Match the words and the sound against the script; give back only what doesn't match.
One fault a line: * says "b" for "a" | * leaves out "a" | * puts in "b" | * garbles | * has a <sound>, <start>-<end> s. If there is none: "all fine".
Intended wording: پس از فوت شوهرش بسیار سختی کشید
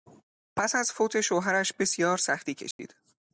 * has a dropout, 2.7-2.8 s